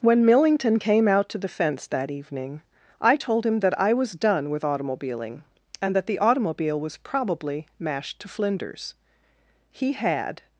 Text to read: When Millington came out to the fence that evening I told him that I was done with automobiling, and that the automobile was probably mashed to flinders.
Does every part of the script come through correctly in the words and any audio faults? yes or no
no